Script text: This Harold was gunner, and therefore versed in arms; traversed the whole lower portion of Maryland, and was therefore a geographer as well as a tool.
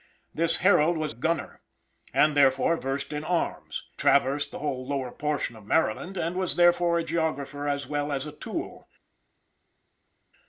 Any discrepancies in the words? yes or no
no